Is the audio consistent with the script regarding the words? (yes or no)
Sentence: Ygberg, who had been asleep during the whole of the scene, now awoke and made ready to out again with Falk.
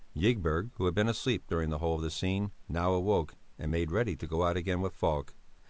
no